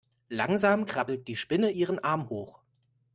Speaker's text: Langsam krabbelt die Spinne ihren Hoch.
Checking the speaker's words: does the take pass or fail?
fail